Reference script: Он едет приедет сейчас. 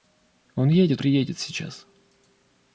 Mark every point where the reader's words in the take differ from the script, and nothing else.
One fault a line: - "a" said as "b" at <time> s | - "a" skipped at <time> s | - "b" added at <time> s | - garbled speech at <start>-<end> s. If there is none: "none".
none